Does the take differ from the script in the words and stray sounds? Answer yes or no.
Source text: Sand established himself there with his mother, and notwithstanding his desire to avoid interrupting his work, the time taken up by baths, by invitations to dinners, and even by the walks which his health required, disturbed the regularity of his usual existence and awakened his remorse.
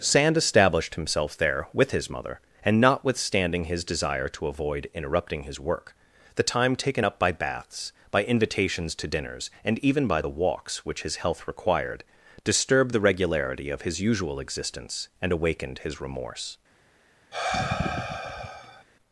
yes